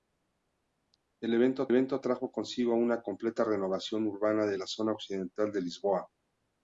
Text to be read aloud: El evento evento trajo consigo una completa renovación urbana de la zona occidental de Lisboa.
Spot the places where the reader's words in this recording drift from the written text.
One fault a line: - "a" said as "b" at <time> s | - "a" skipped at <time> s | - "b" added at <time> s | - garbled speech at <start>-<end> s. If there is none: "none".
none